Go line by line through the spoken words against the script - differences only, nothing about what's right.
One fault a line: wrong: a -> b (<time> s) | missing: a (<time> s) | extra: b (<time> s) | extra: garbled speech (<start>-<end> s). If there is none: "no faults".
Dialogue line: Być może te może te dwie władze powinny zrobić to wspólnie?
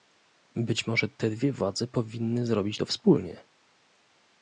missing: może te (1.3 s)